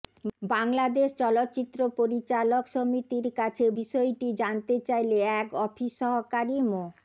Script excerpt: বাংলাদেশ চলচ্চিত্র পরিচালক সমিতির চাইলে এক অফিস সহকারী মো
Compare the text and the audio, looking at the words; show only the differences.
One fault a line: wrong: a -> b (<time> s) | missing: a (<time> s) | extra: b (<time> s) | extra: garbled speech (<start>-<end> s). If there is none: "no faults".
extra: কাছে বিষয়টি জানতে (3.4 s)